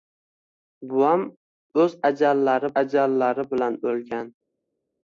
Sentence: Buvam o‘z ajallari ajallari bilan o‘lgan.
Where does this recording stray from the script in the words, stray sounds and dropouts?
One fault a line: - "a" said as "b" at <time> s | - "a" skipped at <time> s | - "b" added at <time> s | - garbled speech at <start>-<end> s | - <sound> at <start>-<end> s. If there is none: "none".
none